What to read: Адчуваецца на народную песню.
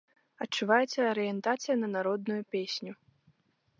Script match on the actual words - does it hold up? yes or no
no